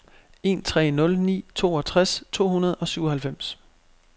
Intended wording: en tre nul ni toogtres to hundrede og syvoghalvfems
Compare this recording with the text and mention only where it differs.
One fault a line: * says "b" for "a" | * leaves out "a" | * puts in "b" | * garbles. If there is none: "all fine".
all fine